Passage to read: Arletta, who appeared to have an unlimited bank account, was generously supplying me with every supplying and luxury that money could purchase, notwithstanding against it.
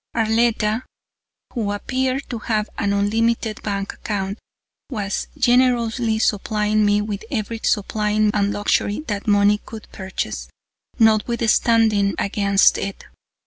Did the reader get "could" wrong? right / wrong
right